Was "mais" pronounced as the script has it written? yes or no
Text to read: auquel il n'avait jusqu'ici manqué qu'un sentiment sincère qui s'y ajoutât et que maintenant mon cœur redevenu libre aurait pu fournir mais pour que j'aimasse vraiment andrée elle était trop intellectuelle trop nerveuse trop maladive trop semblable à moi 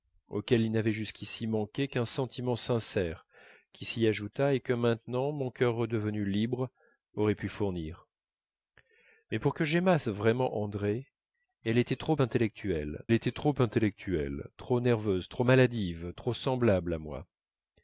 yes